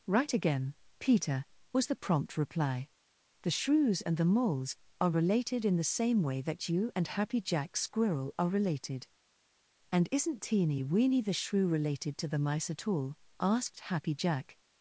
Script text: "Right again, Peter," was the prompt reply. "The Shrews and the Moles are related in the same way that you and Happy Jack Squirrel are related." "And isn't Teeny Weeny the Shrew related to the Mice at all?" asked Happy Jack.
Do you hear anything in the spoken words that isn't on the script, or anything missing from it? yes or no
no